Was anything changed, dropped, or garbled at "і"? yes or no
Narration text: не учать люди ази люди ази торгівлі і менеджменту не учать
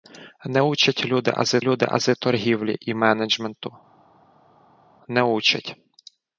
no